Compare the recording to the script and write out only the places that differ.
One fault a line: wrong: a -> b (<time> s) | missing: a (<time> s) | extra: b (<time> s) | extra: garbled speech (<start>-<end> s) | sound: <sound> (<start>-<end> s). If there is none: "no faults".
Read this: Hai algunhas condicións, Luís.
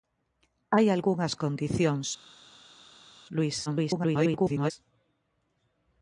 extra: garbled speech (3.7-4.7 s)